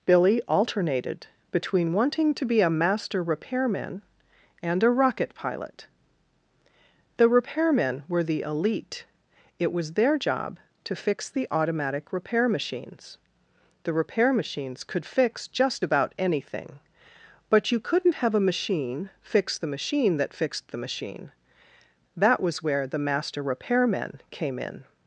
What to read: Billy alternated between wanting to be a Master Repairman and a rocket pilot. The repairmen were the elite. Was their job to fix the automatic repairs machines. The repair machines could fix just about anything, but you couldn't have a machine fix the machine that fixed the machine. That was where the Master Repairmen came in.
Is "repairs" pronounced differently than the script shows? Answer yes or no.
yes